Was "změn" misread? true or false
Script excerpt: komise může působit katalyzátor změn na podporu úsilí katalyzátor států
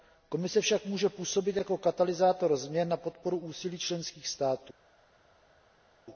false